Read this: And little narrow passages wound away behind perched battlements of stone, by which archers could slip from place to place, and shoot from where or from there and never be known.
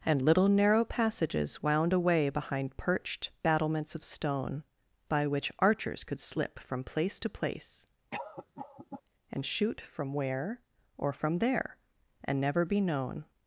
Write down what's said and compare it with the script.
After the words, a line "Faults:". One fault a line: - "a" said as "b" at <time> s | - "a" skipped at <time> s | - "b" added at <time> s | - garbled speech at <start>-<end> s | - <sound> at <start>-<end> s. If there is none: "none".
And little narrow passages wound away behind perched battlements of stone, by which archers could slip from place to place, and shoot from where or from there and never be known.
Faults:
- cough at 8.1-9.0 s